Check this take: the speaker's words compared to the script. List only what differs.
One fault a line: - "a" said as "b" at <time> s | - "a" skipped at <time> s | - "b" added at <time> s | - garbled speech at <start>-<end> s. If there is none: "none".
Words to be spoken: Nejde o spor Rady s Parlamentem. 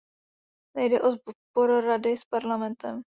none